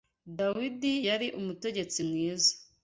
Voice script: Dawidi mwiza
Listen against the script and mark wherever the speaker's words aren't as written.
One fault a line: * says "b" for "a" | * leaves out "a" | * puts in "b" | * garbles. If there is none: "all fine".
* puts in "yari umutegetsi"